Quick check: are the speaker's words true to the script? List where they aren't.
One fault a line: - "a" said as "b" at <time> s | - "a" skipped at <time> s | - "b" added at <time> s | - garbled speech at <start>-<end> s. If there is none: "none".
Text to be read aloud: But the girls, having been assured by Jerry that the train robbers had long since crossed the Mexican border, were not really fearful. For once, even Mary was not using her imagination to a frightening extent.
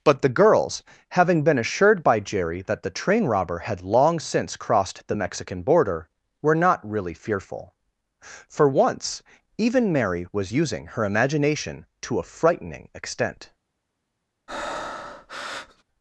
- "robbers" said as "robber" at 3.2 s
- "not" skipped at 10.5 s